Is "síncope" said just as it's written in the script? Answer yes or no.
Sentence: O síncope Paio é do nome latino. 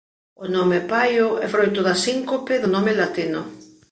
no